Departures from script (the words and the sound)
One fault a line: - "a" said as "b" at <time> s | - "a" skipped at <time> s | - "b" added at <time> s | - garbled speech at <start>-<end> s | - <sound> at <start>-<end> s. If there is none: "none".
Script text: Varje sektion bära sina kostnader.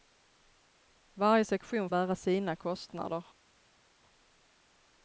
none